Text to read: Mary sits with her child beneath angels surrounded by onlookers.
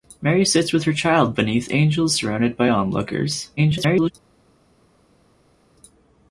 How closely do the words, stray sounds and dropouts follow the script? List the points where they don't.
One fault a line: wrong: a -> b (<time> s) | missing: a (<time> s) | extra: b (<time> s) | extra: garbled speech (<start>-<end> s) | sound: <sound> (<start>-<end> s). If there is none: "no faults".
extra: garbled speech (3.6-4.1 s)